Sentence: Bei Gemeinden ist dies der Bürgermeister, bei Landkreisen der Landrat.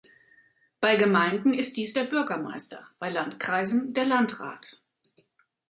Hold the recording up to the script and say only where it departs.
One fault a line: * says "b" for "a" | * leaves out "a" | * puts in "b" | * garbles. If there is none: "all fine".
all fine